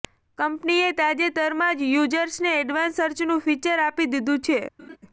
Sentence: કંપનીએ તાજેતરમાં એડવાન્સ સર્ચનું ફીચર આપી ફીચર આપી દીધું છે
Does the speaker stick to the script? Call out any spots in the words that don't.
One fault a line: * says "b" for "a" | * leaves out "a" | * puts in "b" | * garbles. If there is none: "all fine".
* puts in "જ યૂઝર્સને"
* leaves out "ફીચર આપી"